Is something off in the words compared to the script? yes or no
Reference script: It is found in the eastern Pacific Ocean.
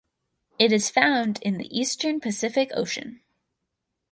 no